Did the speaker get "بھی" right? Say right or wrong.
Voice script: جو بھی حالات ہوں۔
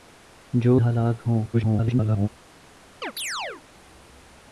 wrong